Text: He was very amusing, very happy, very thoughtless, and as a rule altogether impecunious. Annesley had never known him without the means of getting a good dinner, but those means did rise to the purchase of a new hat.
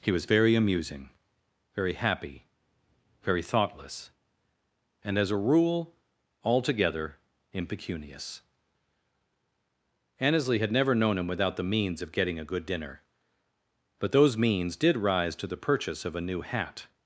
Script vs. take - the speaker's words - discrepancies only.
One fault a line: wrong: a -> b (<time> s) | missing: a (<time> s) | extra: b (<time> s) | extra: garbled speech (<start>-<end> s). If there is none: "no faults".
no faults